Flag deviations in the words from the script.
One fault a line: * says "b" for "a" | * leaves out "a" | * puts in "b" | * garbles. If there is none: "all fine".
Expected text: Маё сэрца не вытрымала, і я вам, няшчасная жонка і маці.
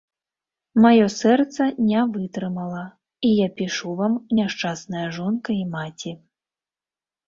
* puts in "пішу"